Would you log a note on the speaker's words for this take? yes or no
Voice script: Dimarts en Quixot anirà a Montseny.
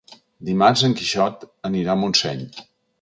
no